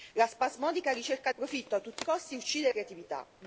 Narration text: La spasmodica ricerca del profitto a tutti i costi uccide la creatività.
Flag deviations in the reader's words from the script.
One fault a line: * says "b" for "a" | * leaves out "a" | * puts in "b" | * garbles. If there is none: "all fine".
* leaves out "del"
* leaves out "la"